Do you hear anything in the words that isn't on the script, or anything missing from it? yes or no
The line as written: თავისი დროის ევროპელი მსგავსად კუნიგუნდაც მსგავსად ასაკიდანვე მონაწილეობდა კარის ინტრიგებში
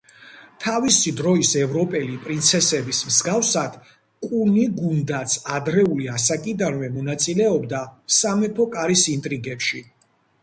yes